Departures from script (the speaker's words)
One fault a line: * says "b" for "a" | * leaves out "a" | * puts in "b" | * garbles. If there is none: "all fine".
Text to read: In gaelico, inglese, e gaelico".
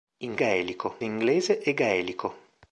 all fine